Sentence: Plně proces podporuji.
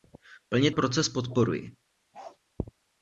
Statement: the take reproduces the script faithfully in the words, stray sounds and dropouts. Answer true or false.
false